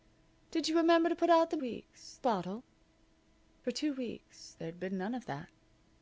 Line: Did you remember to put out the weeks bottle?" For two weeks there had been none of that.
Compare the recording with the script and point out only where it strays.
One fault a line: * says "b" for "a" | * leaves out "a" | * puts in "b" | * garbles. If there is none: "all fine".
all fine